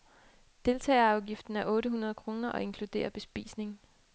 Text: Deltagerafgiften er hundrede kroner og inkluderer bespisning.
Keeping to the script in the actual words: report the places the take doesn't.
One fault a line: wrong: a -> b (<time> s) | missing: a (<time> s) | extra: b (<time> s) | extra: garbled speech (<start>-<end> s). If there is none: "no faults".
extra: otte (1.6 s)